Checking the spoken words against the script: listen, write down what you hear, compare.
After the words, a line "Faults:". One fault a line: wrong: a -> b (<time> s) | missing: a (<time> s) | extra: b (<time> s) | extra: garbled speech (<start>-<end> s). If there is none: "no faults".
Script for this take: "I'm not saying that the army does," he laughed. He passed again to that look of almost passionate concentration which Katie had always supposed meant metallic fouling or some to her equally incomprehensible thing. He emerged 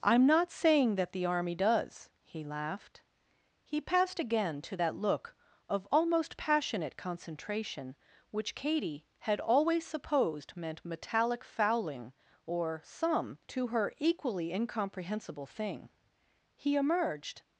"I'm not saying that the army does," he laughed. He passed again to that look of almost passionate concentration which Katie had always supposed meant metallic fouling or some to her equally incomprehensible thing. He emerged
Faults:
no faults